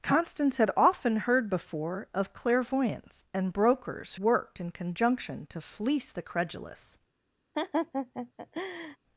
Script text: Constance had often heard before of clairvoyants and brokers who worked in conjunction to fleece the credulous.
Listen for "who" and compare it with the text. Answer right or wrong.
wrong